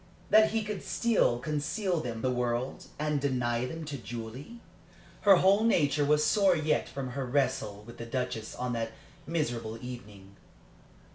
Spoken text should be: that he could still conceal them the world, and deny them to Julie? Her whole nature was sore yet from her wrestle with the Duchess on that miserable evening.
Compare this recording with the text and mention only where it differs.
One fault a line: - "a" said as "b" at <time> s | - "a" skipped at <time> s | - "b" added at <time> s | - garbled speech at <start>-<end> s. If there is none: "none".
none